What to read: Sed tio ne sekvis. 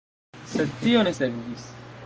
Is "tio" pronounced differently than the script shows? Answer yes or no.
no